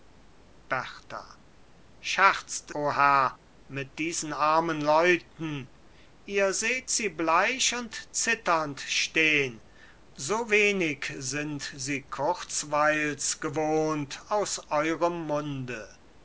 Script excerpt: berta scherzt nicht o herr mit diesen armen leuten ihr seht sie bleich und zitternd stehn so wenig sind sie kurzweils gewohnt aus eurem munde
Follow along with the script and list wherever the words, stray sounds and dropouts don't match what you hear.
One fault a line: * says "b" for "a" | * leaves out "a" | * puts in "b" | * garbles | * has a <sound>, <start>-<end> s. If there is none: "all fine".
* leaves out "nicht"